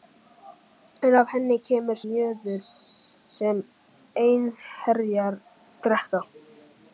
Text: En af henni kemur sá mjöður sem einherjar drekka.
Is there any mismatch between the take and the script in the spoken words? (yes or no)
yes